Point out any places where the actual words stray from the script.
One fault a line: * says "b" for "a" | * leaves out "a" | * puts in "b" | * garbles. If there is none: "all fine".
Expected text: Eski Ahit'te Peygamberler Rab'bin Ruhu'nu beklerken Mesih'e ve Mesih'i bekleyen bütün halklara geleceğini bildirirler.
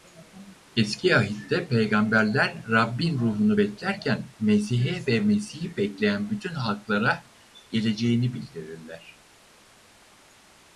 all fine